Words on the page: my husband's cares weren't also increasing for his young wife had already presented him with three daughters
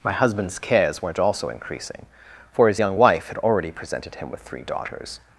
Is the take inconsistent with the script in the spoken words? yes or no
no